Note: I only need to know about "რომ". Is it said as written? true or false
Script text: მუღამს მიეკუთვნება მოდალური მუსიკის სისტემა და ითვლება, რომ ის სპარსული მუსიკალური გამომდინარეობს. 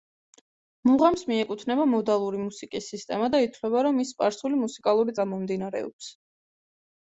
true